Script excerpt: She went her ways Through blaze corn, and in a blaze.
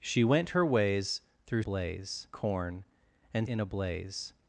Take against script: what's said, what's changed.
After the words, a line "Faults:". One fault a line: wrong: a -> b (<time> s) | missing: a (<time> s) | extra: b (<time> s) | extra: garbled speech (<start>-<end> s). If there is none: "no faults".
She went her ways Through blaze corn, and in a blaze.
Faults:
no faults